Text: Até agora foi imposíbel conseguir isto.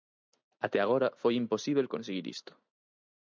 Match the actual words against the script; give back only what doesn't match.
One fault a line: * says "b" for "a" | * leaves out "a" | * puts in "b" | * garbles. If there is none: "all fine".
all fine